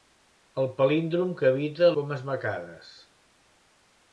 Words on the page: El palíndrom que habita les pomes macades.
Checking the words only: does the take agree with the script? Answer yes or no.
no